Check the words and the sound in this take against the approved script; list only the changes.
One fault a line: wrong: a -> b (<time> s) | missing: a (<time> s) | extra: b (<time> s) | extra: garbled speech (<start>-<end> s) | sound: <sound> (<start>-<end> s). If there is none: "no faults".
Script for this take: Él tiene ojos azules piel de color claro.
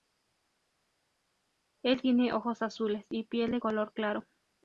extra: y (3.1 s)